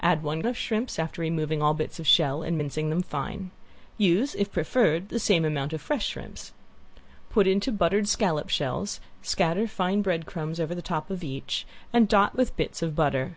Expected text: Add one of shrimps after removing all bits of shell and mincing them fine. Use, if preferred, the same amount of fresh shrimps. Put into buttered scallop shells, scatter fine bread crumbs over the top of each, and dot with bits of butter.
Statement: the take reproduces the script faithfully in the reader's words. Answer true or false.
true